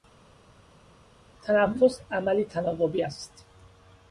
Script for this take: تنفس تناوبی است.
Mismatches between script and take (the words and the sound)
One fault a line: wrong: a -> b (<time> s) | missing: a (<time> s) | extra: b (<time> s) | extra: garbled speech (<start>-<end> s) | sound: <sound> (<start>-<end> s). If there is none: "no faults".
extra: عملی (2.1 s)